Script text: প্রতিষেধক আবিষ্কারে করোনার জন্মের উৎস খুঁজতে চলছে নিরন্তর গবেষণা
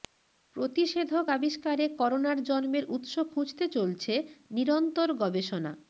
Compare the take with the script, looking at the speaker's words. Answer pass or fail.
pass